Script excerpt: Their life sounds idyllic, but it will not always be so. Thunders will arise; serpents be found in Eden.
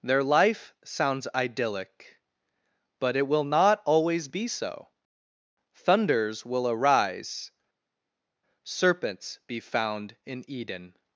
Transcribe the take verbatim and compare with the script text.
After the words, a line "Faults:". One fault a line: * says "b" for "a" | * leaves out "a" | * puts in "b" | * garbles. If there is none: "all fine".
Their life sounds idyllic, but it will not always be so. Thunders will arise; serpents be found in Eden.
Faults:
all fine